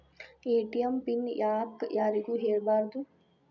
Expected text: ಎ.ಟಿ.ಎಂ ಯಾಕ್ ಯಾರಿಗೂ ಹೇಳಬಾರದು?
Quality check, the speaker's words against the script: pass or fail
fail